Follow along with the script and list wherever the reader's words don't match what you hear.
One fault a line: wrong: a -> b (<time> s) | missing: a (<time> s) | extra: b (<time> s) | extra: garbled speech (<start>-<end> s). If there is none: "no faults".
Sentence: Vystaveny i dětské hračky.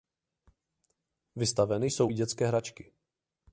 extra: jsou (1.9 s)